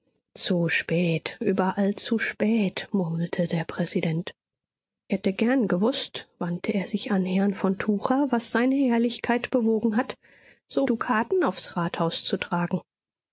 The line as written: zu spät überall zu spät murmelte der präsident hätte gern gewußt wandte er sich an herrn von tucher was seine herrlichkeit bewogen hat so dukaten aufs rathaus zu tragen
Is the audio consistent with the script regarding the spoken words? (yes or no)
yes